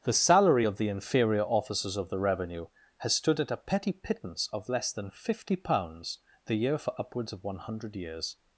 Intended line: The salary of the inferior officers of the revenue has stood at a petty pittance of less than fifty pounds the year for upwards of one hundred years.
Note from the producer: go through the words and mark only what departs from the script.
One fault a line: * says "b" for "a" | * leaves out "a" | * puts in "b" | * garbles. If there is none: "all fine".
all fine